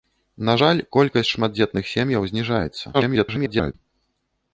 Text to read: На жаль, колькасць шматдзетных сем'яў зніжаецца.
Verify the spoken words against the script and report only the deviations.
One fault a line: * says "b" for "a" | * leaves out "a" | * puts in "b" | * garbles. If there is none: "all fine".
* garbles